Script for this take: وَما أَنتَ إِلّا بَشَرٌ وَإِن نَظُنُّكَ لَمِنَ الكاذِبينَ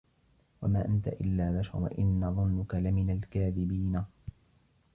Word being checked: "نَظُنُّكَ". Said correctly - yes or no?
yes